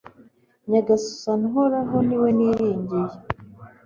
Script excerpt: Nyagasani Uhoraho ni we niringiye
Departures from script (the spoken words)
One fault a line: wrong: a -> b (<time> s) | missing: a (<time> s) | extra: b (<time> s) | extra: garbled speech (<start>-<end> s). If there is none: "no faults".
no faults